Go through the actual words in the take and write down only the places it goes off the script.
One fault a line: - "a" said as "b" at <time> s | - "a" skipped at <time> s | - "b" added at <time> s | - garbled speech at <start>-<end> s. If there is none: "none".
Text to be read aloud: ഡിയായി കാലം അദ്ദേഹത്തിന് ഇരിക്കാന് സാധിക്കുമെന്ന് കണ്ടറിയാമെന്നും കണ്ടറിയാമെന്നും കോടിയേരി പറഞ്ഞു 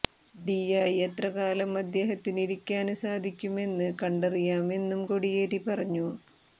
- "എത്ര" added at 1.1 s
- "കണ്ടറിയാമെന്നും" skipped at 5.0 s